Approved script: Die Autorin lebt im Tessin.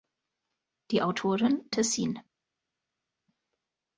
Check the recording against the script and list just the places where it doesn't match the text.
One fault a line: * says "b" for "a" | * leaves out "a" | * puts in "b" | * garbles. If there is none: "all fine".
* leaves out "lebt im"